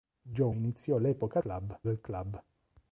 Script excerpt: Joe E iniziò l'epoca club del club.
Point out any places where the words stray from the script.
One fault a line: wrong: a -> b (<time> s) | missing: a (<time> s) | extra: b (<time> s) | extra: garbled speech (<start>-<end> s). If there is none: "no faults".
no faults